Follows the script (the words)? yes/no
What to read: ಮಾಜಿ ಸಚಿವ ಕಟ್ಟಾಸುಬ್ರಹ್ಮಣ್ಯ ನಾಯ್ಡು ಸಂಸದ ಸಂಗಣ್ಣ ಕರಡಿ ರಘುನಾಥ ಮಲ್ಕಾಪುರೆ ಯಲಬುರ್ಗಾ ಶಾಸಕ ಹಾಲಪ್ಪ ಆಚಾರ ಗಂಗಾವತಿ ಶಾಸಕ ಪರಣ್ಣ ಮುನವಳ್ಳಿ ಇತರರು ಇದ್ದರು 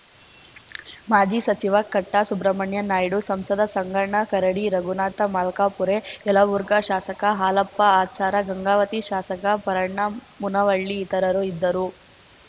yes